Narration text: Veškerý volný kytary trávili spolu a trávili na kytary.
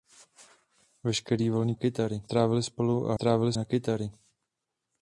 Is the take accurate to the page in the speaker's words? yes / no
yes